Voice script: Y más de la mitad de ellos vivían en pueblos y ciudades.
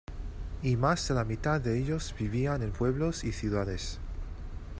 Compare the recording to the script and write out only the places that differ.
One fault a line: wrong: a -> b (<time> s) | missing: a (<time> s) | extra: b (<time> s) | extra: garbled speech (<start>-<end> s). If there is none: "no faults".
no faults